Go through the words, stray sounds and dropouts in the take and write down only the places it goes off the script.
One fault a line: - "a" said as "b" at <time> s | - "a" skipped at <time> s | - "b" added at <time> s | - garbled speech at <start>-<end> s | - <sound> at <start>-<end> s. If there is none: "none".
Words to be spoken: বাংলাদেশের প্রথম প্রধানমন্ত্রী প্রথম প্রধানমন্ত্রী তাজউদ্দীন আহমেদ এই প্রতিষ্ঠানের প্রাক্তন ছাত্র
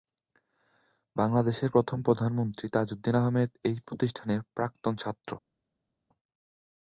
- "প্রথম প্রধানমন্ত্রী" skipped at 2.7 s